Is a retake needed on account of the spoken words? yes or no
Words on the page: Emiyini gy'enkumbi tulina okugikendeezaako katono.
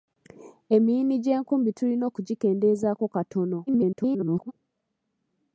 yes